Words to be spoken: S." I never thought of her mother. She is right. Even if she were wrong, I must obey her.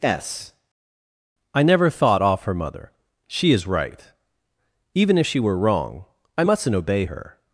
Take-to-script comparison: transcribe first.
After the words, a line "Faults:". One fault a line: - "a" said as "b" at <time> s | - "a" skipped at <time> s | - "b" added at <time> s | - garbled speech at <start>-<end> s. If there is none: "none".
S." I never thought off her mother. She is right. Even if she were wrong, I mustn't obey her.
Faults:
- "of" said as "off" at 2.2 s
- "must" said as "mustn't" at 6.4 s